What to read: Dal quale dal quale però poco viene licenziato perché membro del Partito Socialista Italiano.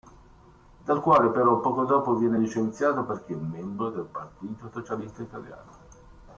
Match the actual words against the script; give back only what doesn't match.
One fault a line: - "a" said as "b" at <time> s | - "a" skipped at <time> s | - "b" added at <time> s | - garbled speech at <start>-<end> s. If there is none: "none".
- "dal quale" skipped at 1.3 s
- "dopo" added at 1.9 s